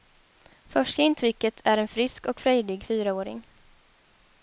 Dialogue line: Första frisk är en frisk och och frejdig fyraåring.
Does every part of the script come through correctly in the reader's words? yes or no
no